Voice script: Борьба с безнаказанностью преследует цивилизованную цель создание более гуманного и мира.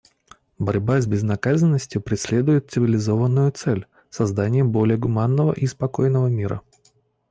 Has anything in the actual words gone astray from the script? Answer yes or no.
yes